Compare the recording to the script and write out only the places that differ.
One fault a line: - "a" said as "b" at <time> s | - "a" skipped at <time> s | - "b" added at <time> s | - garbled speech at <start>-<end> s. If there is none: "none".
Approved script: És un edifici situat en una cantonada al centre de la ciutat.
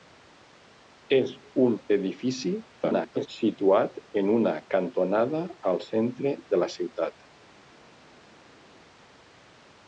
- garbled speech at 2.8-3.3 s